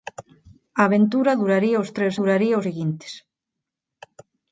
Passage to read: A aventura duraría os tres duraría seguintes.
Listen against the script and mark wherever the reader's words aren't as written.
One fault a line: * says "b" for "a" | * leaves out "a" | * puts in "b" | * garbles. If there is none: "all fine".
all fine